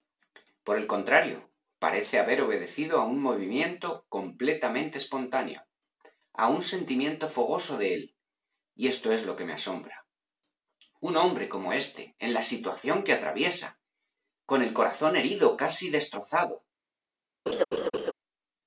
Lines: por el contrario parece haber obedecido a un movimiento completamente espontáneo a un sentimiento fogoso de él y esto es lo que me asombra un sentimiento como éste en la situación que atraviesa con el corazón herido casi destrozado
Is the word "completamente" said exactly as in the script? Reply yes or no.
yes